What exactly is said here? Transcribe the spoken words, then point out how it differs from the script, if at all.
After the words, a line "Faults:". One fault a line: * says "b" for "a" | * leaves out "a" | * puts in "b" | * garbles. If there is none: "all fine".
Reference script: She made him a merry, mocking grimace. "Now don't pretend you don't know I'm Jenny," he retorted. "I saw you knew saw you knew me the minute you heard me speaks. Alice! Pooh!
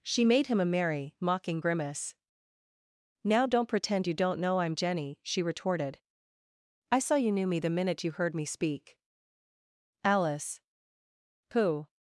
She made him a merry, mocking grimace. "Now don't pretend you don't know I'm Jenny," she retorted. "I saw you knew me the minute you heard me speak. Alice! Pooh!
Faults:
* says "she" for "he"
* leaves out "saw you knew"
* says "speak" for "speaks"